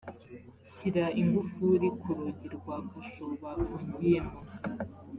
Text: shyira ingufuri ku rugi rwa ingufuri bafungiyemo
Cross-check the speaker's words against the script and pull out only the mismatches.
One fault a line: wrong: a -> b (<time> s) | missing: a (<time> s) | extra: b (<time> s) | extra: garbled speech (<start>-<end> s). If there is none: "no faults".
wrong: ingufuri -> kasho (2.9 s)